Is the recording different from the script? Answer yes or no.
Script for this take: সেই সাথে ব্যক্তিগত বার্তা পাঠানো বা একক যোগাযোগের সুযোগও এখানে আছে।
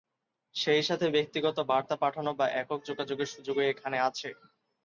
no